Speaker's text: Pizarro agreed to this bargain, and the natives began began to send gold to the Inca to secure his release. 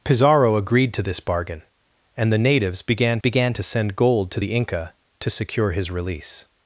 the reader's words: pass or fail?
pass